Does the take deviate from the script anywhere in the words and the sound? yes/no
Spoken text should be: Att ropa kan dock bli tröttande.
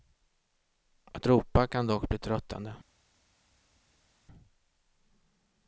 no